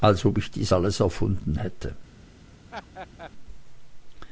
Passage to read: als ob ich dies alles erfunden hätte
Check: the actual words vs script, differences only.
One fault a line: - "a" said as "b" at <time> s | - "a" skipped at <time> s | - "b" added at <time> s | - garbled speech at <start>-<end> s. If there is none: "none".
none